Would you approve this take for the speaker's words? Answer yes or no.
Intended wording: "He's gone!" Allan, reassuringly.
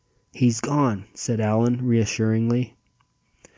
no